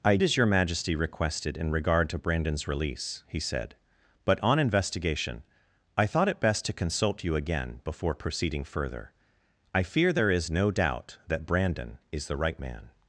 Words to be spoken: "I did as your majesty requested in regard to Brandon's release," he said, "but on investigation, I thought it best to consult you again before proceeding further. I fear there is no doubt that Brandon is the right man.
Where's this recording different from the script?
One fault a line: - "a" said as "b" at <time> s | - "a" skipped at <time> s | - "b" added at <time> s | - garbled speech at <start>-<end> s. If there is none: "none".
- "did" skipped at 0.2 s